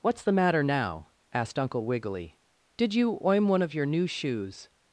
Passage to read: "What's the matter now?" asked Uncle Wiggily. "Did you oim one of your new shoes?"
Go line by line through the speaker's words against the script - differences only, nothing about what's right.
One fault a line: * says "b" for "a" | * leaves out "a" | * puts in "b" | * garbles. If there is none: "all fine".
all fine